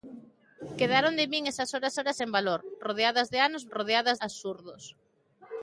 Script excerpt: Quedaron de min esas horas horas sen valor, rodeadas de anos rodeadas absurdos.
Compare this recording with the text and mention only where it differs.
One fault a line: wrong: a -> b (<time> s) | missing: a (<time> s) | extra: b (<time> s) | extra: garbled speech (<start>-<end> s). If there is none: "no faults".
no faults